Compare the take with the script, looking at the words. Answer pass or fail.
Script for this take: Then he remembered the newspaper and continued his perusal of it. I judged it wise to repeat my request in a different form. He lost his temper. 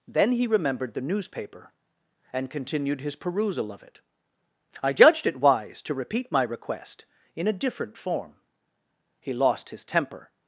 pass